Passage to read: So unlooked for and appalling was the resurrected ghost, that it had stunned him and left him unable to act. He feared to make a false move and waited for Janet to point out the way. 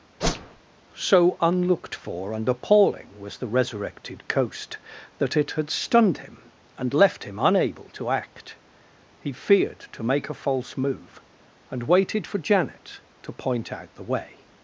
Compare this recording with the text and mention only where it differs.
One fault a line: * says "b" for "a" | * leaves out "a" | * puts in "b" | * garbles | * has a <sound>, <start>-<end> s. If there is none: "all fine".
* has a whoosh, 0.2-0.6 s
* says "coast" for "ghost"